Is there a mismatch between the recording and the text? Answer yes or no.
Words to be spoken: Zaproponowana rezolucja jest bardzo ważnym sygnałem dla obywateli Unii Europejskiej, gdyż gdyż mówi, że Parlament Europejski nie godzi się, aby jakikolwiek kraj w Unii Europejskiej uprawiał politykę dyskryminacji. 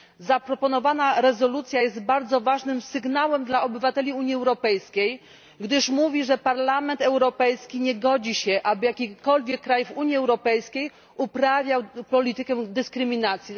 yes